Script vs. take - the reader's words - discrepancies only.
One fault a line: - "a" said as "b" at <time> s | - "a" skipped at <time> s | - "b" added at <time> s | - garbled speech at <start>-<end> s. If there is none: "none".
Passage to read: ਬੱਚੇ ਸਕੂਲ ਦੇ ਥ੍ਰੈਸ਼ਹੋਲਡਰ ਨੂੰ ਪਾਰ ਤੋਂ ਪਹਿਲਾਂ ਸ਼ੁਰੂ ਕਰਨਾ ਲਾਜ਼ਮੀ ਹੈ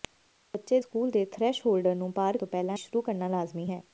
none